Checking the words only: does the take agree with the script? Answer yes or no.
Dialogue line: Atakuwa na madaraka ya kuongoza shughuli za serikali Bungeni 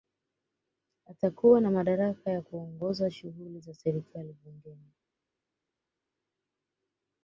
yes